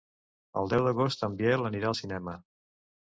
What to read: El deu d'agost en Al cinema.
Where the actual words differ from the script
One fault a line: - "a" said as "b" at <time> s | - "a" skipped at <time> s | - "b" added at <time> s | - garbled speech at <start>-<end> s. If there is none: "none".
- "Biel anirà" added at 1.4 s